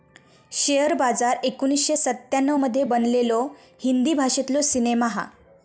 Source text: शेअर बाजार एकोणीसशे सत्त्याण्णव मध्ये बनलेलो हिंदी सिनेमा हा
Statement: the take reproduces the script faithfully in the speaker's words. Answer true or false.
false